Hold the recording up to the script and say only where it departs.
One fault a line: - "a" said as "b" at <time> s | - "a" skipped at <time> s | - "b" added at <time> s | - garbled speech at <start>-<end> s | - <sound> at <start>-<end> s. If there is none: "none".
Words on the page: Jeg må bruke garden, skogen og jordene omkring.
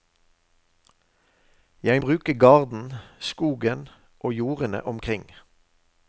- "må" skipped at 2.0 s